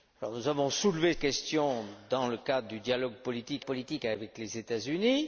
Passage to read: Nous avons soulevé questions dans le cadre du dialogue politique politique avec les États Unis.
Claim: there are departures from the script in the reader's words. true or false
false